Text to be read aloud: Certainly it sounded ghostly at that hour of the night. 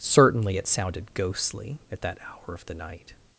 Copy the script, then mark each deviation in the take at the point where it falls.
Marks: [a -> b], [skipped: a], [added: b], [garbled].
Certainly it sounded ghostly at that hour of the night.